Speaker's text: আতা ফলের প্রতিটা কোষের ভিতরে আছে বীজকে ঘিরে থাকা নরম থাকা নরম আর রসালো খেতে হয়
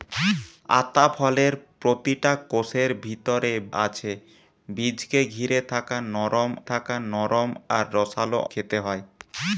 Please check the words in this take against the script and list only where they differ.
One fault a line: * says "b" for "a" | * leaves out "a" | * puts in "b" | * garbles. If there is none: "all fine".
all fine